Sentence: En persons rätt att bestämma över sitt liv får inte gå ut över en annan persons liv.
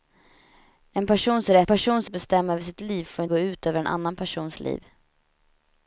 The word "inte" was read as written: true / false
false